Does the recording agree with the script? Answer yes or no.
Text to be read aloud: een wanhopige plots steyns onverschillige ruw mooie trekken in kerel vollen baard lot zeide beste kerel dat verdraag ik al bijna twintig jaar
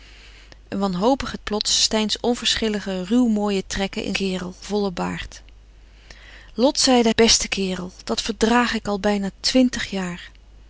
yes